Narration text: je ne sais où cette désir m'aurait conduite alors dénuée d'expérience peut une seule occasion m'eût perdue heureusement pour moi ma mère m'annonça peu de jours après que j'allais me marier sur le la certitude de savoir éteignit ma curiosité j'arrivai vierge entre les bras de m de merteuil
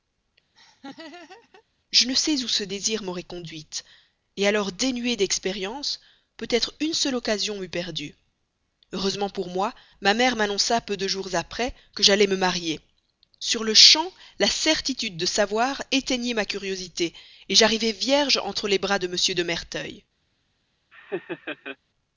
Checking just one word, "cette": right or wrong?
wrong